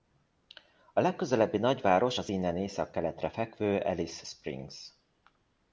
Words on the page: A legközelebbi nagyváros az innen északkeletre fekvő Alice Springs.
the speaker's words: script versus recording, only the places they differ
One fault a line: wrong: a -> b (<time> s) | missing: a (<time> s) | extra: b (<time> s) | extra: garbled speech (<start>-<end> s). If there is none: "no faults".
no faults